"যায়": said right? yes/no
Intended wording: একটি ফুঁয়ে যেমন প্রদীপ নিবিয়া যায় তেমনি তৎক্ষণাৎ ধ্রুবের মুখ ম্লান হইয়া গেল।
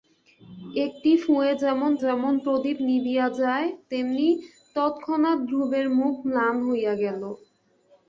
yes